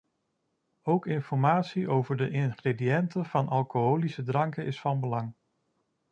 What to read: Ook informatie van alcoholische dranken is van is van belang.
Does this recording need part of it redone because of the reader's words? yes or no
yes